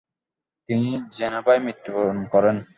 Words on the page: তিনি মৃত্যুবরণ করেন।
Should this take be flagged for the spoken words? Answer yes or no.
yes